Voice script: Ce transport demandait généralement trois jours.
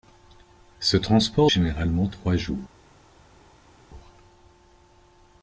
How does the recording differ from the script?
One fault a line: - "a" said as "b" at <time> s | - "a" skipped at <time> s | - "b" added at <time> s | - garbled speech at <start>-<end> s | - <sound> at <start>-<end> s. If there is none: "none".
- "demandait" skipped at 1.5 s